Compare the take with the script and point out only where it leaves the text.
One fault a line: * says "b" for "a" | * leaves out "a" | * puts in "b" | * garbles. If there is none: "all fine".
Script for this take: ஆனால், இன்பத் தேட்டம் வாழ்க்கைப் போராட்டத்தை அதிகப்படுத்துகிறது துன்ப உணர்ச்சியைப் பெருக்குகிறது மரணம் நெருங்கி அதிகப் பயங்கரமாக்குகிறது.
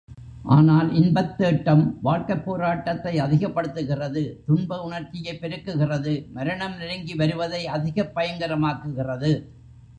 * puts in "வருவதை"